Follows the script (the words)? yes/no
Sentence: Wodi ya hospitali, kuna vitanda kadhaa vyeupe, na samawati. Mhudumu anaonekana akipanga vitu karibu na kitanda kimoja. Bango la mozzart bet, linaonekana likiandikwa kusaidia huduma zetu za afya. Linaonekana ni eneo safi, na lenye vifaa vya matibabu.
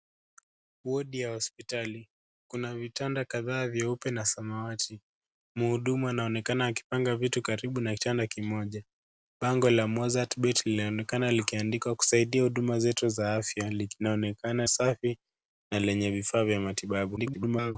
no